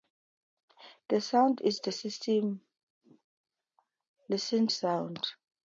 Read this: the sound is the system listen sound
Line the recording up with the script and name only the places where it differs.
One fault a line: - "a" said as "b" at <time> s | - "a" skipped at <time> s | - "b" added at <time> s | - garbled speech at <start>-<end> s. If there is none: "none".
none